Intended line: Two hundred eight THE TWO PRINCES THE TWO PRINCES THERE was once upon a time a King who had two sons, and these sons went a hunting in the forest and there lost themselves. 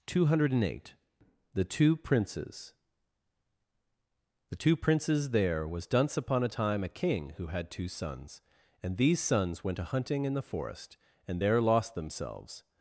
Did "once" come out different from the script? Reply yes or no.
yes